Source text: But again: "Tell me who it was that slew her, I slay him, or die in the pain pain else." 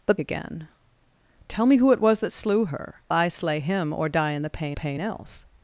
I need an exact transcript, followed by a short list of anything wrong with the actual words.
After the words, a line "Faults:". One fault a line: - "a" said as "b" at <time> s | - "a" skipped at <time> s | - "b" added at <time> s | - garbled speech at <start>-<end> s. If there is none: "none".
But again: "Tell me who it was that slew her, I slay him, or die in the pain pain else."
Faults:
none